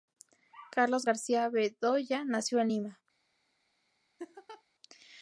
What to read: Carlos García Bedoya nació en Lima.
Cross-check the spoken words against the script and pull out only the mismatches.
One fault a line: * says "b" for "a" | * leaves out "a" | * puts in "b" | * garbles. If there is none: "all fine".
all fine